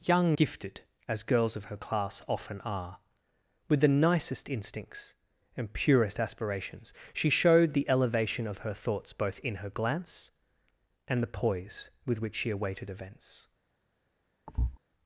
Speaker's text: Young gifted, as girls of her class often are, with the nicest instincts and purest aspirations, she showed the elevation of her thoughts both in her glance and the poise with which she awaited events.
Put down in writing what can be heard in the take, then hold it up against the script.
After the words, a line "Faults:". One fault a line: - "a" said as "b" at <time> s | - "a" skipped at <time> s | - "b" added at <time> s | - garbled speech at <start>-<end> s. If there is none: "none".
Young gifted, as girls of her class often are, with the nicest instincts and purest aspirations, she showed the elevation of her thoughts both in her glance and the poise with which she awaited events.
Faults:
none